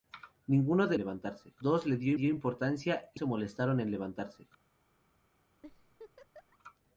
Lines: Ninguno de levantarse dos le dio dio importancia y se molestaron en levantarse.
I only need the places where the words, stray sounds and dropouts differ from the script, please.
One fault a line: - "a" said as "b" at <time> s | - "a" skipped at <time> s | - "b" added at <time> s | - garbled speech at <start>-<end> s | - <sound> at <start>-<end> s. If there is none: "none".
- laugh at 5.6-6.6 s